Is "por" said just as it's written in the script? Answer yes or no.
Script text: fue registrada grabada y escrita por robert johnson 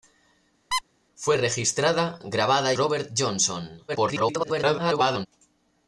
no